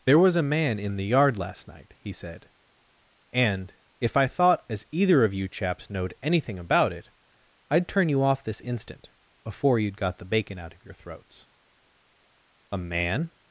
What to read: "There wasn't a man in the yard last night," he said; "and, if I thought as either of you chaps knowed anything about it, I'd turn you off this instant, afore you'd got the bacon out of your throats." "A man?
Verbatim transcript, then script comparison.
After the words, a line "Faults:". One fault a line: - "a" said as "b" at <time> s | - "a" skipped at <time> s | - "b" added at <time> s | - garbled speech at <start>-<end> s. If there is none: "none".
"There was a man in the yard last night," he said; "and, if I thought as either of you chaps knowed anything about it, I'd turn you off this instant, afore you'd got the bacon out of your throats." "A man?
Faults:
- "wasn't" said as "was" at 0.2 s